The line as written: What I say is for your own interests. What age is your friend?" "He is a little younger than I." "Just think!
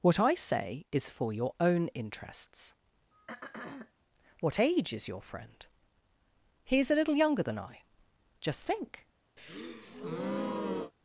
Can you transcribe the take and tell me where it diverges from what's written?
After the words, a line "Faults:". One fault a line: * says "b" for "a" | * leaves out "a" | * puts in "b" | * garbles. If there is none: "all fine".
What I say is for your own interests. What age is your friend?" "He is a little younger than I." "Just think!
Faults:
all fine